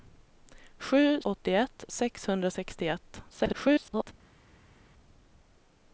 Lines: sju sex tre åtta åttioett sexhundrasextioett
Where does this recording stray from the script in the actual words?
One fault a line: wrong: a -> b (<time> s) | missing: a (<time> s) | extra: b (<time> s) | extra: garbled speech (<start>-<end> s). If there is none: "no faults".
missing: sex tre åtta (1.2 s)
extra: garbled speech (3.3-4.1 s)